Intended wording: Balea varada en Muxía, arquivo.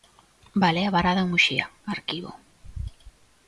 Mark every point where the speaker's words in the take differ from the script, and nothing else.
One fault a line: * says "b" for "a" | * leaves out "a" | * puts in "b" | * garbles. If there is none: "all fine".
all fine